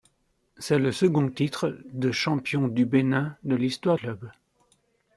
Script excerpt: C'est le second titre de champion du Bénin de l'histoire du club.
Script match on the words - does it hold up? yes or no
no